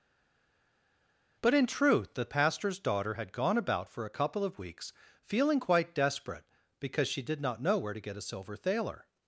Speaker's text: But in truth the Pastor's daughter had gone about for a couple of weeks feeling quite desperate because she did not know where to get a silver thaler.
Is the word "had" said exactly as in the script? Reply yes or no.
yes